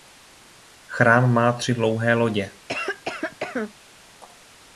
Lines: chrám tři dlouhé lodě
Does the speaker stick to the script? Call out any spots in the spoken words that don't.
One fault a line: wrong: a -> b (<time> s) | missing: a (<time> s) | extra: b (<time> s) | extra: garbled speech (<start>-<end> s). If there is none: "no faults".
extra: má (1.3 s)